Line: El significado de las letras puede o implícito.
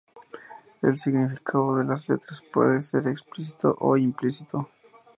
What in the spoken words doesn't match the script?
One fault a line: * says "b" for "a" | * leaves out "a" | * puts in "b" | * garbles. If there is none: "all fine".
* puts in "ser explícito"